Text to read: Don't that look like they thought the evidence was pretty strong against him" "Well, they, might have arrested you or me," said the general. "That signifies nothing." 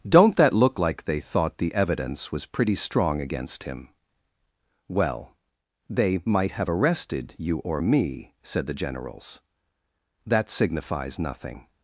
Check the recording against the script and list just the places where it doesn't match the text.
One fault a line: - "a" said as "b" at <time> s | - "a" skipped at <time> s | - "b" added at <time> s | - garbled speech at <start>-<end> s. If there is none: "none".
- "general" said as "generals" at 8.7 s